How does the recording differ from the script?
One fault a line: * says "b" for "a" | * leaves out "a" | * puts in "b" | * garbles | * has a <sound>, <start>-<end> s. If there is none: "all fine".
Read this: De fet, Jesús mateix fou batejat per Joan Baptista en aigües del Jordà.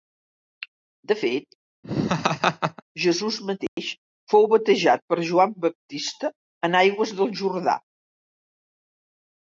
* has a laugh, 1.8-2.8 s
* has a dropout, 3.7-3.8 s